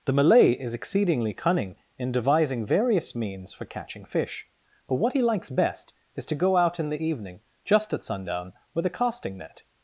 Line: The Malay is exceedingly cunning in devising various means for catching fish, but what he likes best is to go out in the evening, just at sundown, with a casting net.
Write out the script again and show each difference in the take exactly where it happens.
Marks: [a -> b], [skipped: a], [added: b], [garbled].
The Malay is exceedingly cunning in devising various means for catching fish, but what he likes best is to go out in the evening, just at sundown, with a casting net.